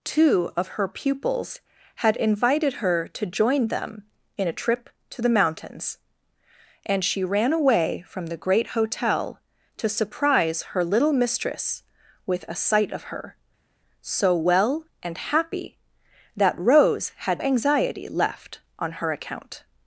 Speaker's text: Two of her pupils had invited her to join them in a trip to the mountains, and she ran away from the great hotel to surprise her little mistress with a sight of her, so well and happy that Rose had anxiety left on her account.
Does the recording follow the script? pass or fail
pass